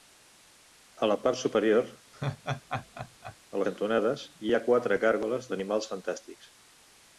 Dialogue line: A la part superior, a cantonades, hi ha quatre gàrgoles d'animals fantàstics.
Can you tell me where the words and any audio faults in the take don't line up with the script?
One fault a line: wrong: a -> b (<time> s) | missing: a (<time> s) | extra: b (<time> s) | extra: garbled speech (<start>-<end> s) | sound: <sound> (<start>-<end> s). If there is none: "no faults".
sound: laugh (2.1-3.4 s)